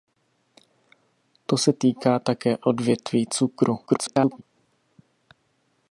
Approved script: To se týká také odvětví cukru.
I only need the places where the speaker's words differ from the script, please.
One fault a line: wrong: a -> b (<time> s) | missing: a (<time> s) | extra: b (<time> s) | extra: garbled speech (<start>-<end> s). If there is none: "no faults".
extra: garbled speech (3.9-4.4 s)